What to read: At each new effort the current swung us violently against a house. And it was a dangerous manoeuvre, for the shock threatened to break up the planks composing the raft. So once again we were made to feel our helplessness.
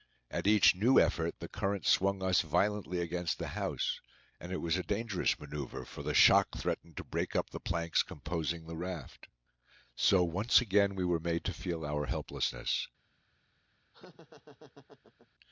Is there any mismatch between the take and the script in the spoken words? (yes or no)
yes